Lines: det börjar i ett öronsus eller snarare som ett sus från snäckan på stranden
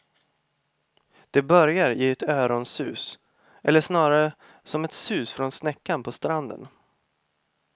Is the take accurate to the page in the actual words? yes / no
yes